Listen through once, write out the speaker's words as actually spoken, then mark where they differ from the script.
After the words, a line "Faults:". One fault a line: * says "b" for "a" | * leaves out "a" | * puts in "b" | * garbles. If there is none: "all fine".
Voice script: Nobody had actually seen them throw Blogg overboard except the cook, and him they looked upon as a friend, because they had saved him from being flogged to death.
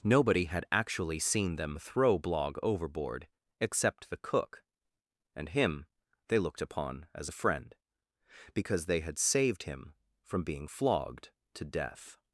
Nobody had actually seen them throw Blogg overboard except the cook, and him they looked upon as a friend, because they had saved him from being flogged to death.
Faults:
all fine